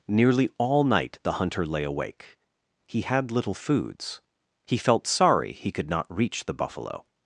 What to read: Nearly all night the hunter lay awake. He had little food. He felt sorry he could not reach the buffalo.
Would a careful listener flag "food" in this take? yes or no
yes